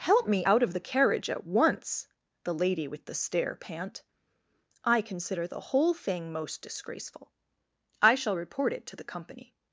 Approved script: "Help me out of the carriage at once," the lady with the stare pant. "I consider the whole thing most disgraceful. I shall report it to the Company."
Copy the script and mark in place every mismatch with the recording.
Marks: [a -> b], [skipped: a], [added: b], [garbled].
"Help me out of the carriage at once," the lady with the stare pant. "I consider the whole thing most disgraceful. I shall report it to the Company."